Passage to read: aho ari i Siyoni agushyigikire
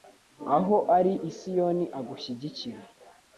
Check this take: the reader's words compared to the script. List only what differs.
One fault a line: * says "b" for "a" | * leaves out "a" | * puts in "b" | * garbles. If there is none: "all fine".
all fine